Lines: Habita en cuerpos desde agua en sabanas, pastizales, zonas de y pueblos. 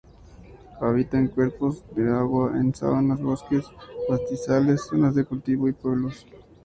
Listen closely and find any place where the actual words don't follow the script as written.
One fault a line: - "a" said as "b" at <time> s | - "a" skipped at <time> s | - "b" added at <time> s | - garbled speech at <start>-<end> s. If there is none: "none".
- "desde" said as "de" at 1.9 s
- "bosques" added at 3.2 s
- "cultivo" added at 5.2 s